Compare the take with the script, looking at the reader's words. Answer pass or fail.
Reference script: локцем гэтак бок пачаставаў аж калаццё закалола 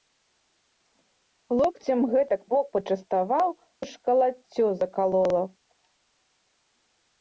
pass